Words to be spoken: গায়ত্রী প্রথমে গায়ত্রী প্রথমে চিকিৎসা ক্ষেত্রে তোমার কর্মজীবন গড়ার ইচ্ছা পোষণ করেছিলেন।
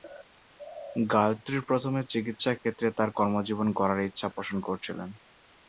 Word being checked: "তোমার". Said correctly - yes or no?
no